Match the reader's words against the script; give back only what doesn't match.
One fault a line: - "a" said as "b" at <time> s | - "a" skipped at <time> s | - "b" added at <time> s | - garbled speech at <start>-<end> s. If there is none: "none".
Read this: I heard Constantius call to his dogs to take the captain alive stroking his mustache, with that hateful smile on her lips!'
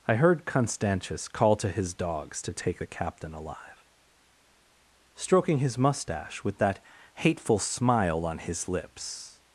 - "her" said as "his" at 8.4 s